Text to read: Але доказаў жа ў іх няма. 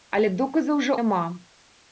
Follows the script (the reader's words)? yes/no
no